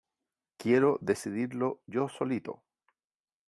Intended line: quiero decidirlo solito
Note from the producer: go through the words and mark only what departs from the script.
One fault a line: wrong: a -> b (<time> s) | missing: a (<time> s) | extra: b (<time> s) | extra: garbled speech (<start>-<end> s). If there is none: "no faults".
extra: yo (1.9 s)